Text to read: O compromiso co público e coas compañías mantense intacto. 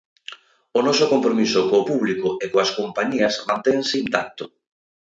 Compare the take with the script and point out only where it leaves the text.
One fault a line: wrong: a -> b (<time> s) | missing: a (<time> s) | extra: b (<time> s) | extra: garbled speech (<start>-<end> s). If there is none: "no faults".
extra: noso (0.9 s)